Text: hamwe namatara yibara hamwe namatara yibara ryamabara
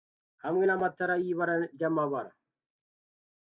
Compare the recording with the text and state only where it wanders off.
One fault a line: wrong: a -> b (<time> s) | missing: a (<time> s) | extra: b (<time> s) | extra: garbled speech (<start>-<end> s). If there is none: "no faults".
missing: hamwe namatara yibara (1.5 s)